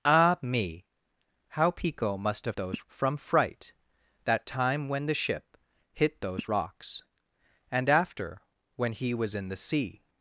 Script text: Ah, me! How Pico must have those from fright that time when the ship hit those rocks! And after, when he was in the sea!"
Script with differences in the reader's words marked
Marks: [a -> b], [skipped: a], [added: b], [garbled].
Ah, me! How Pico must have those from fright that time when the ship hit those rocks! And after, when he was in the sea!"